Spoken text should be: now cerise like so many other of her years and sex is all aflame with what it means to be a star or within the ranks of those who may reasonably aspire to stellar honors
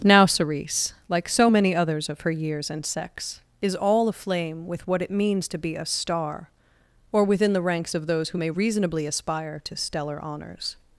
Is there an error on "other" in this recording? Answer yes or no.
yes